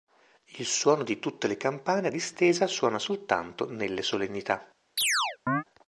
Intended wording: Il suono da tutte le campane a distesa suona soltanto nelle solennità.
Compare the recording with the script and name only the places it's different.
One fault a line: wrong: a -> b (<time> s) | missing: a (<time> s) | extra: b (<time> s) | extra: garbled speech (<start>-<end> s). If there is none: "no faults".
wrong: da -> di (1.0 s)